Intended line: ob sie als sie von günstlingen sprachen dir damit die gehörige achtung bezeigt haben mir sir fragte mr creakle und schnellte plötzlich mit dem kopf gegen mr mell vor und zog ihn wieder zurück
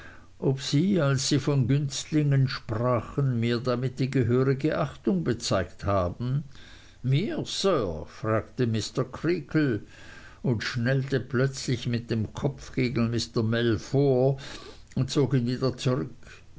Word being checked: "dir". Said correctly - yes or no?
no